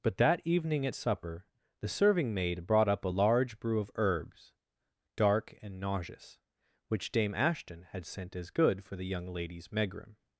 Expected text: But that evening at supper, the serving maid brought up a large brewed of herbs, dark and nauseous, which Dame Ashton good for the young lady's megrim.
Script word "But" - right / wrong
right